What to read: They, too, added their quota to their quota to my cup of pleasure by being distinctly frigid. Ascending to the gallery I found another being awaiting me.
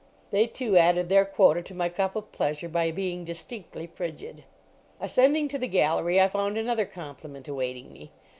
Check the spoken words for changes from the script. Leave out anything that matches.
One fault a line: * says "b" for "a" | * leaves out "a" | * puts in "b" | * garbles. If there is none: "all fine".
* leaves out "their quota to"
* says "compliment" for "being"